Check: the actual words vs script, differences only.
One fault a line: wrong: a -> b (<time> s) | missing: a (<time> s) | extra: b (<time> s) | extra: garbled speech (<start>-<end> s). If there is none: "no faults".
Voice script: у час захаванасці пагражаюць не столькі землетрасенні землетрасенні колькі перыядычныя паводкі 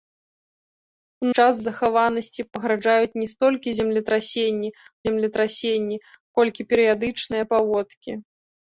no faults